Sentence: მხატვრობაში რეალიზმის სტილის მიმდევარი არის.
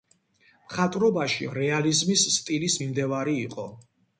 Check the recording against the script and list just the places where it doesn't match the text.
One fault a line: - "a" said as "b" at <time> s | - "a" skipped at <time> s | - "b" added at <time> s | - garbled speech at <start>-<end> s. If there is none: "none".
- "არის" said as "იყო" at 3.5 s